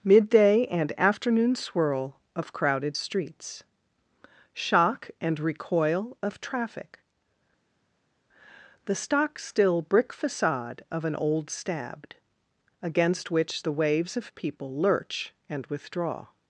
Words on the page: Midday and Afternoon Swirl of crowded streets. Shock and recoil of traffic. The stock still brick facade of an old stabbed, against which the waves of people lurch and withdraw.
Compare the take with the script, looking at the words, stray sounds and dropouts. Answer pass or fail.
pass